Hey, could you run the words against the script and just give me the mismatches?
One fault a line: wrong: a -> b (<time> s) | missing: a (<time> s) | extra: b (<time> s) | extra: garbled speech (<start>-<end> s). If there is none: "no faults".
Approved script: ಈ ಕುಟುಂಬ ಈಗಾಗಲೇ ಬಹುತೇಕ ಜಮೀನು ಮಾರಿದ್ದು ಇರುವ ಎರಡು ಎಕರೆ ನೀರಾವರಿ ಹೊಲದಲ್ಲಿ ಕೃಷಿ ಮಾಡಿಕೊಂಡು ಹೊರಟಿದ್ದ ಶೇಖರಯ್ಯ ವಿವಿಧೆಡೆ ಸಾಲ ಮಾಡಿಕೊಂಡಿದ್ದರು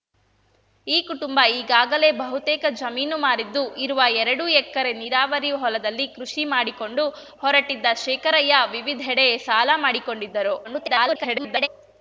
extra: garbled speech (10.6-11.7 s)